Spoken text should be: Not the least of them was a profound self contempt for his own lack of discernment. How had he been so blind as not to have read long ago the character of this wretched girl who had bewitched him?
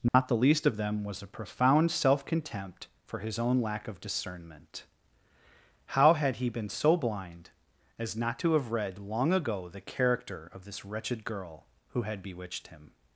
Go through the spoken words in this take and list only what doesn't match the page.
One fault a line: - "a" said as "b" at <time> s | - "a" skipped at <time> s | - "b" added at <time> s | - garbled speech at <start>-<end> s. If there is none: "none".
none